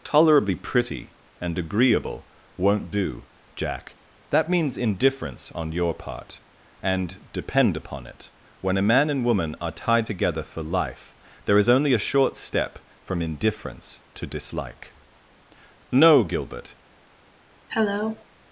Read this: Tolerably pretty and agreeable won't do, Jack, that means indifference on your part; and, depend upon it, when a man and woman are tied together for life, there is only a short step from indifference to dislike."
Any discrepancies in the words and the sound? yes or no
yes